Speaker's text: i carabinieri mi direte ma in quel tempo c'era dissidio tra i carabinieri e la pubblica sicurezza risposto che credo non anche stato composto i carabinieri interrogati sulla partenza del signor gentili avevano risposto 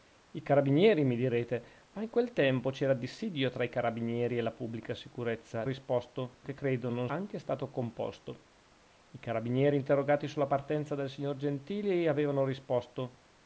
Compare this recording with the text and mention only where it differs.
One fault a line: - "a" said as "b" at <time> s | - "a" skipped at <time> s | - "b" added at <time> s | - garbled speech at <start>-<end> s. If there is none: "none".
none